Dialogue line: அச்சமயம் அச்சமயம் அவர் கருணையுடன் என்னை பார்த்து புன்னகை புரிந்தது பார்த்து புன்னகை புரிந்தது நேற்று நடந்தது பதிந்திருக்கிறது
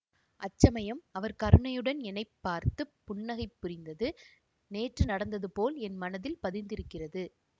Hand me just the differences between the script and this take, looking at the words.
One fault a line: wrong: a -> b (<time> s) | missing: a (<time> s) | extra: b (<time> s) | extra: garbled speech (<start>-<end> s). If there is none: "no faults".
missing: அச்சமயம் (1.0 s)
wrong: பார்த்து புன்னகை புரிந்தது நேற்று நடந்தது -> நேற்று நடந்தது போல் என் மனத்தில் (4.7 s)